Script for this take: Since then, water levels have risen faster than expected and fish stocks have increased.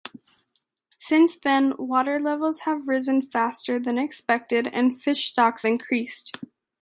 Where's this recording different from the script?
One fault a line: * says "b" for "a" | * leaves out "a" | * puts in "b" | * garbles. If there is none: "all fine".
* leaves out "have"